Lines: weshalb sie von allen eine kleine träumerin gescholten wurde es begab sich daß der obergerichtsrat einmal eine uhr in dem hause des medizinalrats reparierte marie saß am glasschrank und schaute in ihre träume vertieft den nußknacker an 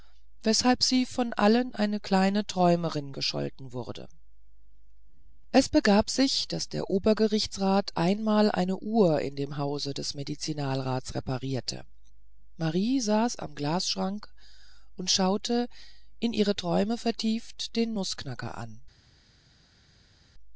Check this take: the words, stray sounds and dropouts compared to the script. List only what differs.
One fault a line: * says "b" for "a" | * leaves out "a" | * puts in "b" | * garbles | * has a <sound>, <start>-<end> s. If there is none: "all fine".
all fine